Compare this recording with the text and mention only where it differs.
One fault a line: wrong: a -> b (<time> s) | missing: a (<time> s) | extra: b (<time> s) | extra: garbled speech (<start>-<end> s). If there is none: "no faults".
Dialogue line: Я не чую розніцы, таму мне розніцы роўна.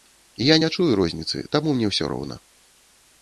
wrong: розніцы -> ўсё (1.9 s)